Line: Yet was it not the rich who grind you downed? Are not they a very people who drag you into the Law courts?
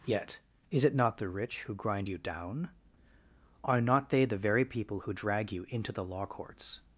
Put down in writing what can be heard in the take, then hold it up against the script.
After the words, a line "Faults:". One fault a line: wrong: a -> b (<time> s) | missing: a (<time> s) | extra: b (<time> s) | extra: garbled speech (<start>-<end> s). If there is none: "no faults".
Yet is it not the rich who grind you down? Are not they the very people who drag you into the Law courts?
Faults:
wrong: was -> is (0.7 s)
wrong: downed -> down (2.2 s)
wrong: a -> the (4.2 s)